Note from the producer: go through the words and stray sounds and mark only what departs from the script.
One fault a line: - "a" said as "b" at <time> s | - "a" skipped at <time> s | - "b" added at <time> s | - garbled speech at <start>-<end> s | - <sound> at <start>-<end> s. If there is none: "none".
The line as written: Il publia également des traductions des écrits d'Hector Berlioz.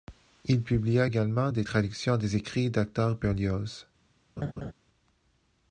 - laugh at 4.4-4.7 s